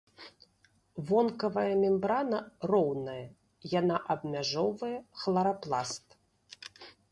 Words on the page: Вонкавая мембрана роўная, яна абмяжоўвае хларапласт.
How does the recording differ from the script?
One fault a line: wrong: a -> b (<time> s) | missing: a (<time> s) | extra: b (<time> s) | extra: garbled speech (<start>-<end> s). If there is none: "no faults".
no faults